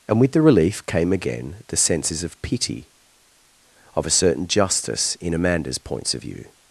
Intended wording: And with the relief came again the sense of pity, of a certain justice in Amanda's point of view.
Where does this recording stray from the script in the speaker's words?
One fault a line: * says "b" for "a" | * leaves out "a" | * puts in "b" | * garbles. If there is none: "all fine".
* says "senses" for "sense"
* says "points" for "point"